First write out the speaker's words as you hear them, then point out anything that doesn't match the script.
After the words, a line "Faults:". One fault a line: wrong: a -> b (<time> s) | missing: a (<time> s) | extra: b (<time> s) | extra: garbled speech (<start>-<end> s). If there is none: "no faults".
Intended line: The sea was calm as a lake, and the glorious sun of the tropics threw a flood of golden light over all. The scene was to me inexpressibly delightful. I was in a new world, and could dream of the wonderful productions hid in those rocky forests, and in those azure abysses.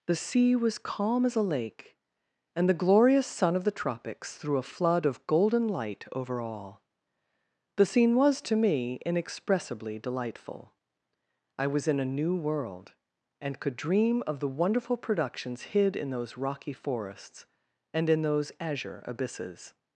The sea was calm as a lake, and the glorious sun of the tropics threw a flood of golden light over all. The scene was to me inexpressibly delightful. I was in a new world, and could dream of the wonderful productions hid in those rocky forests, and in those azure abysses.
Faults:
no faults